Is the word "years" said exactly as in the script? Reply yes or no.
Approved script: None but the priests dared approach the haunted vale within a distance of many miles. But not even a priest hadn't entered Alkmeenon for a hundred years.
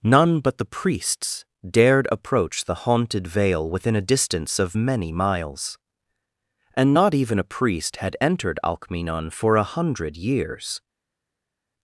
yes